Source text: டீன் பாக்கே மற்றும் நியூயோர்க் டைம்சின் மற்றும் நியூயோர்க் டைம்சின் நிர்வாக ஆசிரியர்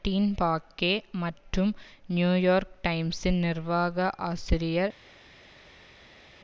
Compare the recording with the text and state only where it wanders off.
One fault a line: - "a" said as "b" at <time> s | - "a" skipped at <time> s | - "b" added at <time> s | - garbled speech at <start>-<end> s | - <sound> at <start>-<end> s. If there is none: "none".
- "மற்றும் நியூயோர்க் டைம்சின்" skipped at 3.4 s